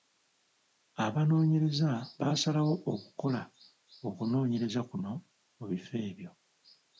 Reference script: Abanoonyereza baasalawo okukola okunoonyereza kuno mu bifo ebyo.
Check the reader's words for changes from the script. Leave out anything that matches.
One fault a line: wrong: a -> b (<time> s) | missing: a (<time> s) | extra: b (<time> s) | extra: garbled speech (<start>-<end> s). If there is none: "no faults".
no faults